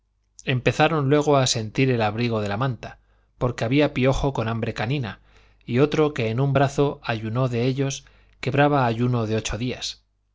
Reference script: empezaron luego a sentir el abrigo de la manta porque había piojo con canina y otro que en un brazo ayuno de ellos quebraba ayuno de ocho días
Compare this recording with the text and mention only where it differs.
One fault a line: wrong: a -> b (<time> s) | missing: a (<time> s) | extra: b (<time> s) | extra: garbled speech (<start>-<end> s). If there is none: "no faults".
extra: hambre (4.5 s)